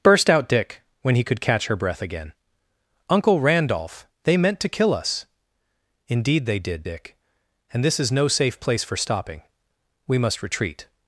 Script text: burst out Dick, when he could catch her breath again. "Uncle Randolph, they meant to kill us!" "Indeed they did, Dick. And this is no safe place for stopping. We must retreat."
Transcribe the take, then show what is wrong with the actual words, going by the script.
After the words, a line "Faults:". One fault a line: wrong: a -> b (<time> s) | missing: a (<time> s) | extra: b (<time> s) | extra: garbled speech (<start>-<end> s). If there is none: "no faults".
burst out Dick, when he could catch her breath again. "Uncle Randolph, they meant to kill us!" "Indeed they did, Dick. And this is no safe place for stopping. We must retreat."
Faults:
no faults